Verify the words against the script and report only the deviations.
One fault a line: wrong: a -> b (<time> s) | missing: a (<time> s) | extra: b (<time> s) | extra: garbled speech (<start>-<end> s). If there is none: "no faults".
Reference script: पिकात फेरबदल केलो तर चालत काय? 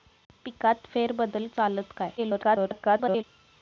missing: केलो तर (1.5 s)
extra: garbled speech (2.2-3.2 s)